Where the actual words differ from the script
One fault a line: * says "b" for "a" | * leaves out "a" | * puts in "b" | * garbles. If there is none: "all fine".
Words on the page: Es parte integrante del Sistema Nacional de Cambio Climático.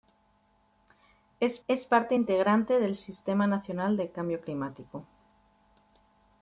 * puts in "es"